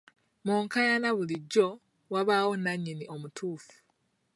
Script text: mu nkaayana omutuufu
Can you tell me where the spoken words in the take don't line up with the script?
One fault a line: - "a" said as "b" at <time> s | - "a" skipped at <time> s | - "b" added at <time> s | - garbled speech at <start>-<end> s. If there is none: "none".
- "bulijjo wabaawo nnannyini" added at 1.2 s